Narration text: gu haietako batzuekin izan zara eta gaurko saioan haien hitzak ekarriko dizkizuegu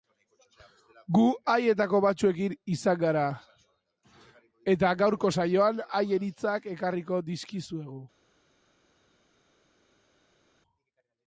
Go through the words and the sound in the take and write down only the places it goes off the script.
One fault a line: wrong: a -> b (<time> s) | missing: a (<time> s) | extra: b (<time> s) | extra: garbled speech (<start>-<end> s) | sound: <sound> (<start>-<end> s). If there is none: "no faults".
wrong: zara -> gara (3.0 s)